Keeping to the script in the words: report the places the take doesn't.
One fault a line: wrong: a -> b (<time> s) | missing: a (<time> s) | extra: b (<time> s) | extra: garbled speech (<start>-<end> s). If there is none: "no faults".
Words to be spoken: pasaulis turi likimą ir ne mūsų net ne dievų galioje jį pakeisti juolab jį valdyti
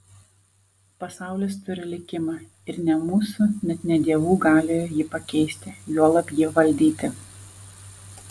no faults